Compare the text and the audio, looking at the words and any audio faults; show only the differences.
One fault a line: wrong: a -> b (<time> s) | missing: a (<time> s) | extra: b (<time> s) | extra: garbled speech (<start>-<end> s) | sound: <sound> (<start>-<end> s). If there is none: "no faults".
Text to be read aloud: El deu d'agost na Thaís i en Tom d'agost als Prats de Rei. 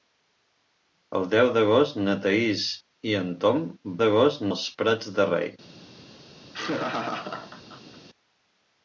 sound: laugh (6.5-8.0 s)